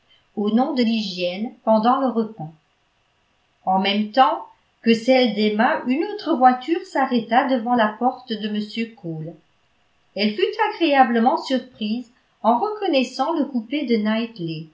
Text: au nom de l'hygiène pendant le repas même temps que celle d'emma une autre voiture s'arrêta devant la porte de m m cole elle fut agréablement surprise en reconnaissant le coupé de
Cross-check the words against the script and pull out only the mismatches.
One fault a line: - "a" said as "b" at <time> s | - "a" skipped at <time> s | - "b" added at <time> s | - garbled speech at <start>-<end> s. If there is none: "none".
- "en" added at 3.6 s
- "m" skipped at 8.9 s